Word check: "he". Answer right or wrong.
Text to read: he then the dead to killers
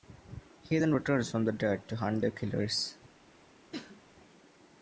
right